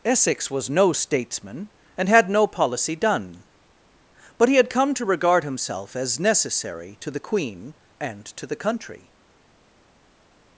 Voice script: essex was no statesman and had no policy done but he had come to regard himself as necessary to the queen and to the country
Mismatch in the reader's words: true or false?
false